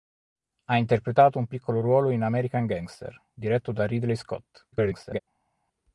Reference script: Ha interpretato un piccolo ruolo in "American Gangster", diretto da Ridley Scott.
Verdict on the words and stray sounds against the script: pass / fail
fail